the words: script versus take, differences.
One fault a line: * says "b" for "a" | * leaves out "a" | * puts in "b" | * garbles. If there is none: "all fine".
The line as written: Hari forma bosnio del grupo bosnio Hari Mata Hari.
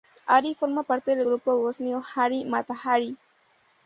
* says "parte" for "bosnio"